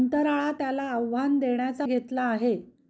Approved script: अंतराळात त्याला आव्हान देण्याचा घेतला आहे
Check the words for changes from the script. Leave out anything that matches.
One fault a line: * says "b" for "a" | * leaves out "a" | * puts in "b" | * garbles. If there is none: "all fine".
all fine